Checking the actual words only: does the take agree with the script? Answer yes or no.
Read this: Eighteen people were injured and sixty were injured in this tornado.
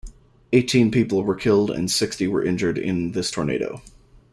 no